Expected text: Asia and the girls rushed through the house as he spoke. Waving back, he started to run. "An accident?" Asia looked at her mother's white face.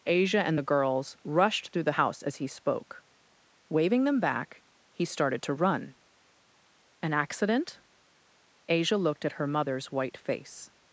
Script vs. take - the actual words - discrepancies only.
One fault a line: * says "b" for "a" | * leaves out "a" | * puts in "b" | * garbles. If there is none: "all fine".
* puts in "them"